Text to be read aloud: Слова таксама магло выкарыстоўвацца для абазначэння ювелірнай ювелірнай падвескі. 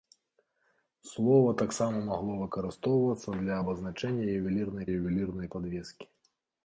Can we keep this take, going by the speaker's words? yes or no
yes